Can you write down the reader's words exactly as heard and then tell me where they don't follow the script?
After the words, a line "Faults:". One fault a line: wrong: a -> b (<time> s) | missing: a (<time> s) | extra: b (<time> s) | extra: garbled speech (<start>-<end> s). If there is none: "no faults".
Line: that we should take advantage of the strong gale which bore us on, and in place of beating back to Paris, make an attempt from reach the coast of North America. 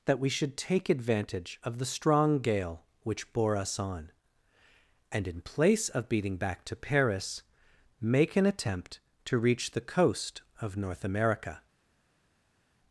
that we should take advantage of the strong gale which bore us on, and in place of beating back to Paris, make an attempt to reach the coast of North America.
Faults:
wrong: from -> to (9.3 s)